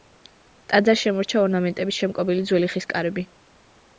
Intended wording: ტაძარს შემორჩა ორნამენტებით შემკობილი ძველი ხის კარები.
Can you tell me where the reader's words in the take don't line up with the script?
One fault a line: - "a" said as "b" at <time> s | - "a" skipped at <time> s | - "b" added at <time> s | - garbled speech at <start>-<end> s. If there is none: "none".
none